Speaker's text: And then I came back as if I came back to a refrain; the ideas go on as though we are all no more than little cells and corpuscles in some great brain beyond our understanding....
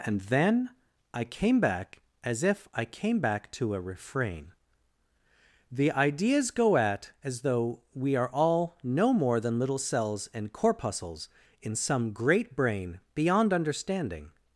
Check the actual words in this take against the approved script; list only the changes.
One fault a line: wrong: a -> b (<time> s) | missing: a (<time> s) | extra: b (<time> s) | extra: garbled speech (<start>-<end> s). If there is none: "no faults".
wrong: on -> at (6.8 s)
missing: our (13.5 s)